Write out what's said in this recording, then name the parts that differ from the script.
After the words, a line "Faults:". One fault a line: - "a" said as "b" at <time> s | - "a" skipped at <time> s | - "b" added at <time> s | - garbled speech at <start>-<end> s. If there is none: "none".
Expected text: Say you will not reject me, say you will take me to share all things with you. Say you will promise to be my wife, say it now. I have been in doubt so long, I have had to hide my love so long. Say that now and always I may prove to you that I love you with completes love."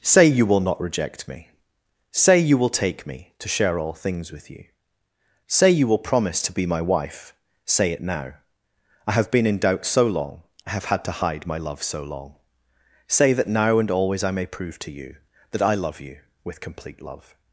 Say you will not reject me, say you will take me to share all things with you. Say you will promise to be my wife, say it now. I have been in doubt so long, I have had to hide my love so long. Say that now and always I may prove to you that I love you with complete love."
Faults:
- "completes" said as "complete" at 16.6 s